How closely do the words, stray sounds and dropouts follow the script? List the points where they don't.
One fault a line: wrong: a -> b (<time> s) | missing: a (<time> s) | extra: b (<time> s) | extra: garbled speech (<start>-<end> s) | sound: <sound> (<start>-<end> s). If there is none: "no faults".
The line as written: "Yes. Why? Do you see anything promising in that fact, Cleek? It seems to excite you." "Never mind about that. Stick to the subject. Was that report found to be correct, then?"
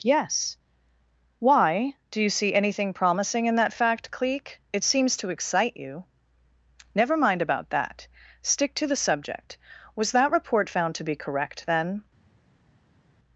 no faults